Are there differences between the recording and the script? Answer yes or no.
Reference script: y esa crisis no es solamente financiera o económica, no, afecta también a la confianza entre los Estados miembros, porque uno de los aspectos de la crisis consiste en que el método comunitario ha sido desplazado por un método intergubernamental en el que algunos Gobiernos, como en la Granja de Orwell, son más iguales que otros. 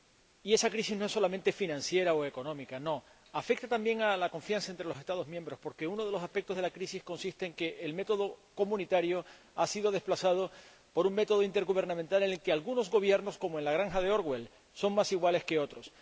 no